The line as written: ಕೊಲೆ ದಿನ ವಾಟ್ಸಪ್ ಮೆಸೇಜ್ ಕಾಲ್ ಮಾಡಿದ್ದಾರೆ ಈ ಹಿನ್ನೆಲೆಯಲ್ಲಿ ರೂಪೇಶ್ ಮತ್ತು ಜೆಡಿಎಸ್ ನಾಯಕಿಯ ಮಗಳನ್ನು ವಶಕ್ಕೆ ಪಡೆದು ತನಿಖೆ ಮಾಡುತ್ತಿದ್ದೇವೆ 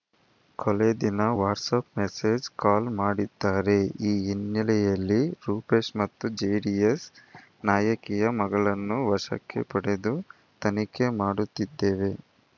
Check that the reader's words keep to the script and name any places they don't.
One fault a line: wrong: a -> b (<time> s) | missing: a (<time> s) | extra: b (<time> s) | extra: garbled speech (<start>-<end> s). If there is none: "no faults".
no faults